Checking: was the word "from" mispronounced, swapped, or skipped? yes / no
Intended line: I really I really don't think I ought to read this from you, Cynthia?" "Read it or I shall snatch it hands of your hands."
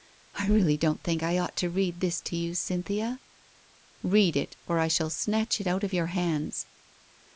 yes